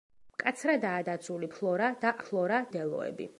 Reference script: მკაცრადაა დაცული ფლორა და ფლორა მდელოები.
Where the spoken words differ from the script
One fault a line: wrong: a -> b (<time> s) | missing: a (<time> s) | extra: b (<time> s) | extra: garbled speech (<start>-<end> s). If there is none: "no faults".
no faults